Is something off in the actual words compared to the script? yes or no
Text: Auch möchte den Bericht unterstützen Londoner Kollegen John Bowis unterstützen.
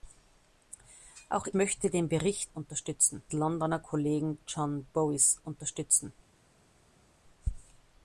no